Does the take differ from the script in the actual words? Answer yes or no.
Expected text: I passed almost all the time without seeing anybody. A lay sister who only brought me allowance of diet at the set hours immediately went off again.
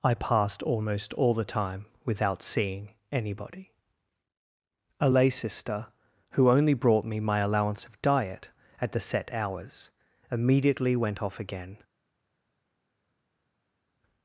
yes